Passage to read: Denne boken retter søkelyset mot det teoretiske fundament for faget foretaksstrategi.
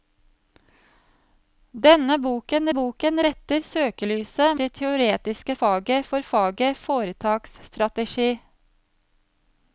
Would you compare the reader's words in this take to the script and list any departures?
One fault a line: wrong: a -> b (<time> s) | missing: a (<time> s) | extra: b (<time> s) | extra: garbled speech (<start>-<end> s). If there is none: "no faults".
extra: boken (2.7 s)
missing: mot (4.6 s)
wrong: fundament -> faget (5.6 s)